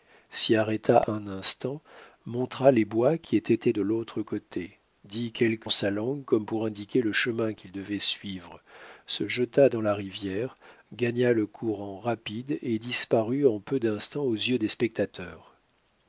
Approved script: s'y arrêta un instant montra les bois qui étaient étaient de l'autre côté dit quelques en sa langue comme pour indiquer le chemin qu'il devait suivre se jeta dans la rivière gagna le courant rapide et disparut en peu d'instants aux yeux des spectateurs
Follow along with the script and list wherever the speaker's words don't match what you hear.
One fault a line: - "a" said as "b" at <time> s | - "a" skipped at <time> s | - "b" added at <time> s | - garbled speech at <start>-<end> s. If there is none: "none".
none